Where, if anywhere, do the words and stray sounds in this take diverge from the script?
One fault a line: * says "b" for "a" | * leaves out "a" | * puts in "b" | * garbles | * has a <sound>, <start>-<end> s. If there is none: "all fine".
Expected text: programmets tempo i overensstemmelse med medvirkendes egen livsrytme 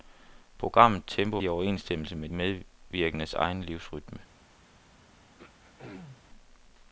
* has a throat clearing, 5.4-6.2 s